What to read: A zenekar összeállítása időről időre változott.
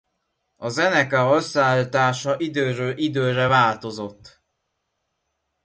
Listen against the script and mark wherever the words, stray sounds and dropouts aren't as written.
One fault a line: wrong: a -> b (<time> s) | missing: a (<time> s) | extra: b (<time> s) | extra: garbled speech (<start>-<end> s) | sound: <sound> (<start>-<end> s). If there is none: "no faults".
no faults